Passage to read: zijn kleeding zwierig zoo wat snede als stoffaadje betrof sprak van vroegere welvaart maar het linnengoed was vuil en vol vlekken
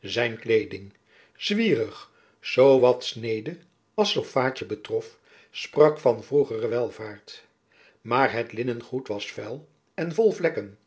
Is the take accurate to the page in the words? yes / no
yes